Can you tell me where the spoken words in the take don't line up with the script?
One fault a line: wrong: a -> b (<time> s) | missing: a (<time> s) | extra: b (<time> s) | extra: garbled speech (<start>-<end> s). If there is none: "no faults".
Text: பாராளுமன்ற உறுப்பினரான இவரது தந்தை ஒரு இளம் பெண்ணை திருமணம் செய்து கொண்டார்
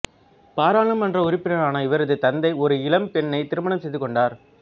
no faults